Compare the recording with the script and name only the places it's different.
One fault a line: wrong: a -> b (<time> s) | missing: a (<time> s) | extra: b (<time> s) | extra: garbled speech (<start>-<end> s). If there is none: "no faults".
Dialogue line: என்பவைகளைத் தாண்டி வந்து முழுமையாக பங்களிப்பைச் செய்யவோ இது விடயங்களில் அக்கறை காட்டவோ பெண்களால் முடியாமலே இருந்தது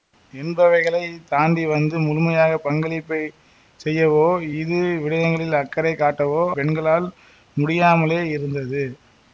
no faults